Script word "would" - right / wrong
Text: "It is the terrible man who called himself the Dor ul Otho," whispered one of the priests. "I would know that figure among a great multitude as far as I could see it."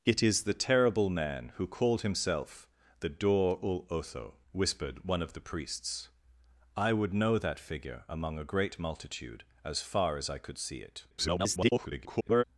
right